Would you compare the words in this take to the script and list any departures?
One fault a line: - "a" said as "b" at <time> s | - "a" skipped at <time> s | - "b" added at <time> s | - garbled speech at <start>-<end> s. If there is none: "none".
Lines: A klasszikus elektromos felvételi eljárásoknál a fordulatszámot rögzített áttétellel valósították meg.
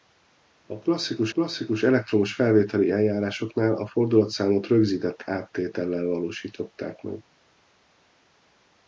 - "klasszikus" added at 1.3 s